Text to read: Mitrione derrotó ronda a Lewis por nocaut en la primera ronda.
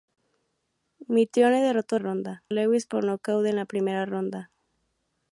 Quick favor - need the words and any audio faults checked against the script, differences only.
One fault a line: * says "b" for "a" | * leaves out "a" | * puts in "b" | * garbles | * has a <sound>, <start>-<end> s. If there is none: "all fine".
all fine